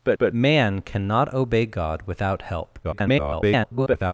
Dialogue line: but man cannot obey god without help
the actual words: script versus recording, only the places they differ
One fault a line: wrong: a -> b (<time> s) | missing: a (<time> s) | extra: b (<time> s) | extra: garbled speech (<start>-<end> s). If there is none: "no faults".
extra: but (0.2 s)
extra: garbled speech (2.8-4.1 s)